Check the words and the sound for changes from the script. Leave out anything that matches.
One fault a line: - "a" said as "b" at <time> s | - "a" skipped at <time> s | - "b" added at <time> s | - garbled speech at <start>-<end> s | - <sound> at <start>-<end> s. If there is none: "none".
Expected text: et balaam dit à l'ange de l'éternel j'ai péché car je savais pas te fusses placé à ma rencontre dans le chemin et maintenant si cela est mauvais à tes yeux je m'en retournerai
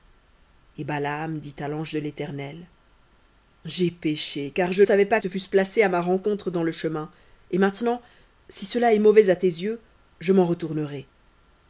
none